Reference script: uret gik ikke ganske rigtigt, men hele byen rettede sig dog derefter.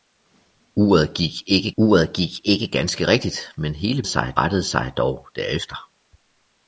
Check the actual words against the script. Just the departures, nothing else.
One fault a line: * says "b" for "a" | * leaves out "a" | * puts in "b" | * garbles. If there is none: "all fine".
* puts in "uret gik ikke"
* says "sig" for "byen"